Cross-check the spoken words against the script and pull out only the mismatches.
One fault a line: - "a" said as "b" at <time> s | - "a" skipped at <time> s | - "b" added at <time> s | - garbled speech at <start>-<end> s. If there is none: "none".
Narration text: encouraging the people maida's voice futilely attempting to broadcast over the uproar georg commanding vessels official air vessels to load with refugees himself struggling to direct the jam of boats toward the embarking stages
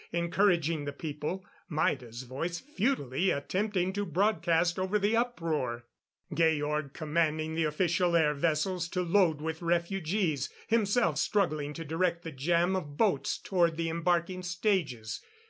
- "vessels" said as "the" at 7.5 s